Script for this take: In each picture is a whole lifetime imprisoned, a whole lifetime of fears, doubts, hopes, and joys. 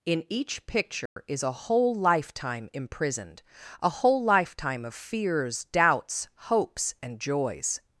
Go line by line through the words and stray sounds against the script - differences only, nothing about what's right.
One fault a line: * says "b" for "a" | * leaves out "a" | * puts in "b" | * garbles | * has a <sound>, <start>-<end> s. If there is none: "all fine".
* has a dropout, 1.1-1.2 s